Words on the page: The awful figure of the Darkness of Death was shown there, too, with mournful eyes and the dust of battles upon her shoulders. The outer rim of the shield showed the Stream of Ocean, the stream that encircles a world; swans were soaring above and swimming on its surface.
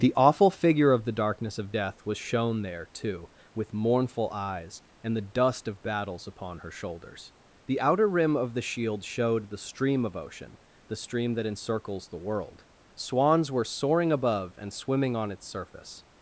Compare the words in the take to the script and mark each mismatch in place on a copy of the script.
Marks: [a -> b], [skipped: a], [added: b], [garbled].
The awful figure of the Darkness of Death was shown there, too, with mournful eyes and the dust of battles upon her shoulders. The outer rim of the shield showed the Stream of Ocean, the stream that encircles [a -> the] world; swans were soaring above and swimming on its surface.